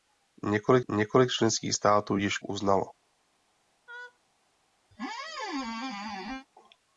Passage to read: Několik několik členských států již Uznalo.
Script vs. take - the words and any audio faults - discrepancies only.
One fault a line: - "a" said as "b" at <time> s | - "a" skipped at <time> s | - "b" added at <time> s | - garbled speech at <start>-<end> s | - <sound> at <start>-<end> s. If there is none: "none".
- laugh at 3.9-4.2 s
- squeak at 4.9-6.5 s